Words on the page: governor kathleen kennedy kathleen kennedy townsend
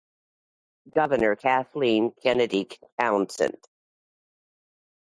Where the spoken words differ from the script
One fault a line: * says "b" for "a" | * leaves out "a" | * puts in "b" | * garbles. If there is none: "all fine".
* leaves out "kathleen kennedy"